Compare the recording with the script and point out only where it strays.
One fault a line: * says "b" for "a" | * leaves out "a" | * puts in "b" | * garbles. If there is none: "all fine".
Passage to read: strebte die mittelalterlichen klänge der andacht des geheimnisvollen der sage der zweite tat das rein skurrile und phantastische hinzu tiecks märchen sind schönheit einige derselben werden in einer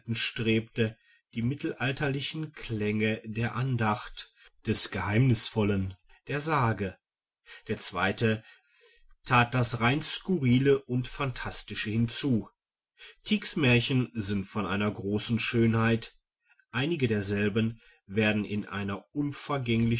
* puts in "von einer großen"